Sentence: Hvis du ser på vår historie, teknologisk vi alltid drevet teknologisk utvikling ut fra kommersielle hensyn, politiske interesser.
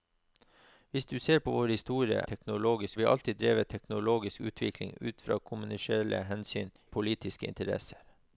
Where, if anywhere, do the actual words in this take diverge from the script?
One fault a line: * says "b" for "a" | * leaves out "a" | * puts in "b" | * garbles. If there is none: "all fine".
all fine